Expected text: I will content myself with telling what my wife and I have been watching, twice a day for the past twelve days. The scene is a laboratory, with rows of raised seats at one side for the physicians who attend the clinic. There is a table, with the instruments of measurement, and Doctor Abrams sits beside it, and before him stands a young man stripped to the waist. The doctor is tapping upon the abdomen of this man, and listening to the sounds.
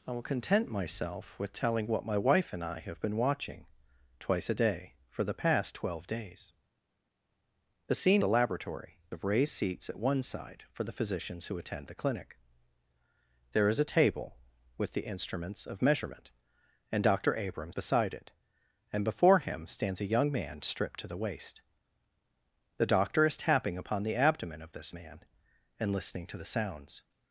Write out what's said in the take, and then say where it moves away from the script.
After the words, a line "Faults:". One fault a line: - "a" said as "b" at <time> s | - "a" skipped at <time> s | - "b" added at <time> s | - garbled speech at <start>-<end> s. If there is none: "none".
I will content myself with telling what my wife and I have been watching, twice a day for the past twelve days. The scene a laboratory, of raised seats at one side for the physicians who attend the clinic. There is a table, with the instruments of measurement, and Doctor Abrams beside it, and before him stands a young man stripped to the waist. The doctor is tapping upon the abdomen of this man, and listening to the sounds.
Faults:
- "is" skipped at 8.2 s
- "with rows" skipped at 9.0 s
- "sits" skipped at 17.8 s